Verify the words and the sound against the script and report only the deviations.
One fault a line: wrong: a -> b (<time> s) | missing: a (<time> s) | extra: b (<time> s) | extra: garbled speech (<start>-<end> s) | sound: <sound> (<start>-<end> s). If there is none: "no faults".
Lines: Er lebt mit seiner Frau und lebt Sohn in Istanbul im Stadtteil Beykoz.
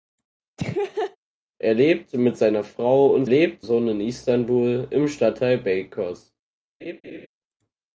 sound: laugh (0.6-1.2 s)
sound: laugh (6.8-7.3 s)